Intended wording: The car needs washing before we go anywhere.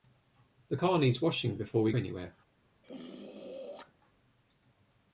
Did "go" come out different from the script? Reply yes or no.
yes